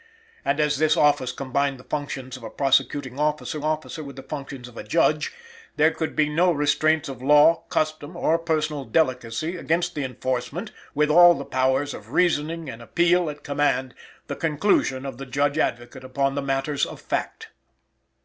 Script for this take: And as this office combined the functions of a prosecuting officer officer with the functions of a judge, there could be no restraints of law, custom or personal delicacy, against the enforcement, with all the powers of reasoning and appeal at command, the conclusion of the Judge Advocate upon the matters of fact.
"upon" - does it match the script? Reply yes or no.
yes